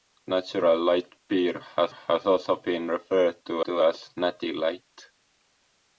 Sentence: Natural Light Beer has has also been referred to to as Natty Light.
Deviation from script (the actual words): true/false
false